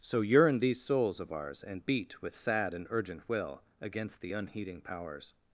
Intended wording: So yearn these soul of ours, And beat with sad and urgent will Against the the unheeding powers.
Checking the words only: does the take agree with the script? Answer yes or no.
no